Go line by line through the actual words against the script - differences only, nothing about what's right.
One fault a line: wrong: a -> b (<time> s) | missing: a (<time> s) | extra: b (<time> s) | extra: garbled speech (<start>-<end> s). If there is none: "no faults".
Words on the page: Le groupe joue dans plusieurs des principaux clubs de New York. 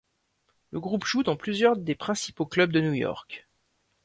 no faults